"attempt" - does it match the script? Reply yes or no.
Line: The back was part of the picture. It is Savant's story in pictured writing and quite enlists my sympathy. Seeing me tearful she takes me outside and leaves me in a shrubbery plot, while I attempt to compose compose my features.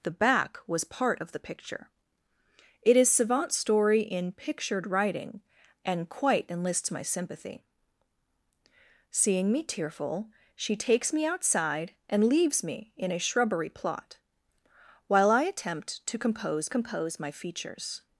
yes